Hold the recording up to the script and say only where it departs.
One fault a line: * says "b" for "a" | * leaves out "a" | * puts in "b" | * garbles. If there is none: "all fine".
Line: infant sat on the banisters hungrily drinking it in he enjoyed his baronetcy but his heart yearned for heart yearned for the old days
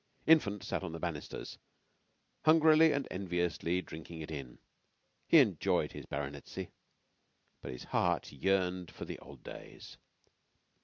* puts in "and enviously"
* leaves out "heart yearned for"